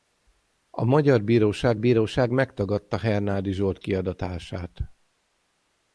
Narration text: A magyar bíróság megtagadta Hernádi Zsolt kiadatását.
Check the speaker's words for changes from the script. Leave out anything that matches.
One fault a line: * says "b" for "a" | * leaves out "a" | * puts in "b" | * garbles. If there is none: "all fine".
* puts in "bíróság"